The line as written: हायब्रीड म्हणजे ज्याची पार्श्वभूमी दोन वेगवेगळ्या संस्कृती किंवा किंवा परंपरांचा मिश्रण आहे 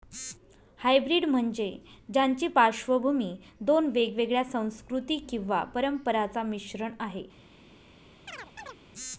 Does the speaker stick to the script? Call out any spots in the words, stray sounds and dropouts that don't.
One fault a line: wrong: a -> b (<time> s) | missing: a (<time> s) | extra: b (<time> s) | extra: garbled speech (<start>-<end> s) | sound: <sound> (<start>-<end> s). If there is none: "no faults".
missing: किंवा (5.6 s)
sound: chirp (8.3-8.8 s)